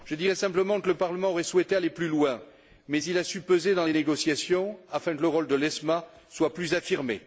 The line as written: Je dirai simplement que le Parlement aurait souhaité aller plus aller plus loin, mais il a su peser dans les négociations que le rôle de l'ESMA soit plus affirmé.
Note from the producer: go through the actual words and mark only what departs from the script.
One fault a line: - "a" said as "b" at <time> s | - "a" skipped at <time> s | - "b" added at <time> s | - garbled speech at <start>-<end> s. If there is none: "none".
- "aller plus" skipped at 2.1 s
- "afin" added at 4.9 s